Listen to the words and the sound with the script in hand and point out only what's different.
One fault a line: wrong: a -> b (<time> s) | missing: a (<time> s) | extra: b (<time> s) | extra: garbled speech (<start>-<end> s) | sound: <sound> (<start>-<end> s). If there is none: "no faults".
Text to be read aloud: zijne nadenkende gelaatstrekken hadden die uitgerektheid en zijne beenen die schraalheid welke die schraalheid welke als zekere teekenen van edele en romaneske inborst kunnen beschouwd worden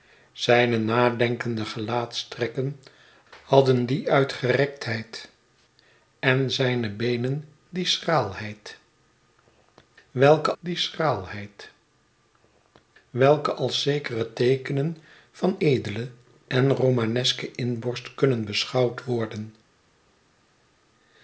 no faults